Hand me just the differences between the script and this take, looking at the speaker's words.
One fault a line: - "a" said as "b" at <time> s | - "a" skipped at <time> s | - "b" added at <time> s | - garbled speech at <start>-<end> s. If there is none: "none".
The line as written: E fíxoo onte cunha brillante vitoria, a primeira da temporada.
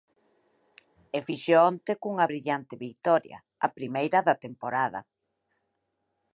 none